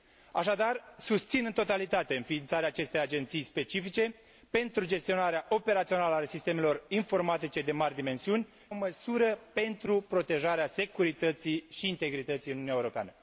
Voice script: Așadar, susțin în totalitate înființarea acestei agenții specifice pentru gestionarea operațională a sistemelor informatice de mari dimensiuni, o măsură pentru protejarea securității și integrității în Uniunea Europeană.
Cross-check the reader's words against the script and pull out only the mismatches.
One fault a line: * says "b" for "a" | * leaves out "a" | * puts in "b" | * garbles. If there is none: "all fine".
all fine